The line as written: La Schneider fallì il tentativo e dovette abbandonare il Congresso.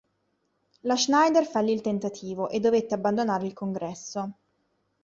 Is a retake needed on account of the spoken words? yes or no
no